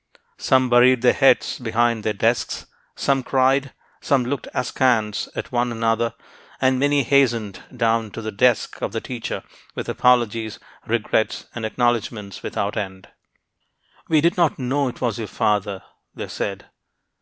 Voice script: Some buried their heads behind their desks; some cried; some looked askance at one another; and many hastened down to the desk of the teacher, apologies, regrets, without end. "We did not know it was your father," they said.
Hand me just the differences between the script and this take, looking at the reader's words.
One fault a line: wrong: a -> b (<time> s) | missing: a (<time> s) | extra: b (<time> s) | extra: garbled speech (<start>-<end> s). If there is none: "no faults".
extra: with (9.8 s)
extra: and acknowledgments (11.5 s)